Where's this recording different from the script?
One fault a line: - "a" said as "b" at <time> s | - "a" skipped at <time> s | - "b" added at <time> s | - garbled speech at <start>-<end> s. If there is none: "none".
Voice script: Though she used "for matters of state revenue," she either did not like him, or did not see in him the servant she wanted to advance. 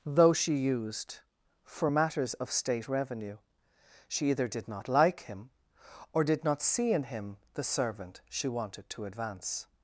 none